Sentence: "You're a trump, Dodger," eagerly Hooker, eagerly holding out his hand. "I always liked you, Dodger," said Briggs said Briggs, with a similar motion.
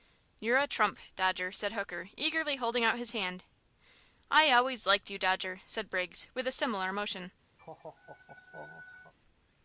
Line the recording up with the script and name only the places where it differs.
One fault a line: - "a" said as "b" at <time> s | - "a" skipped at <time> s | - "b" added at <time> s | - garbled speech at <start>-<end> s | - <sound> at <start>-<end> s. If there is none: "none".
- "eagerly" said as "said" at 1.5 s
- "said Briggs" skipped at 6.3 s
- laugh at 7.6-9.1 s